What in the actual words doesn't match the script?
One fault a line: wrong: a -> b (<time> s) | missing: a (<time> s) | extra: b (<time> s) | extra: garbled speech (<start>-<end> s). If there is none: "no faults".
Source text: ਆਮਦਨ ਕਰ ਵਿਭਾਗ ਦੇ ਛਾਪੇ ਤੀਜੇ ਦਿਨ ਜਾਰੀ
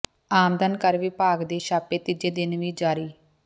extra: ਵੀ (2.6 s)